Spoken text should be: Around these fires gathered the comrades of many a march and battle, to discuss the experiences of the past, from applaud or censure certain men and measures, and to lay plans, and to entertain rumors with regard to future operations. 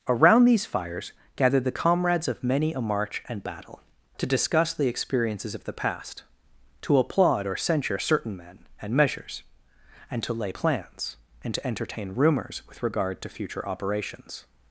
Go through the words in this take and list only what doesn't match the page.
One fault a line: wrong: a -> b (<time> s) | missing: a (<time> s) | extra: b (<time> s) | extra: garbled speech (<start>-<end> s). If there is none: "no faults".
wrong: from -> to (6.8 s)